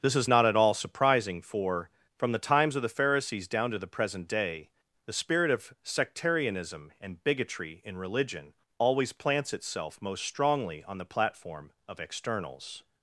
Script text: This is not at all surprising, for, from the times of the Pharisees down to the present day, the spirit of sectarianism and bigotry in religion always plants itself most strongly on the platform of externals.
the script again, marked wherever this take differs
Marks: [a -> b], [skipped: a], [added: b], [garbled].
This is not at all surprising, for, from the times of the Pharisees down to the present day, the spirit of sectarianism and bigotry in religion always plants itself most strongly on the platform of externals.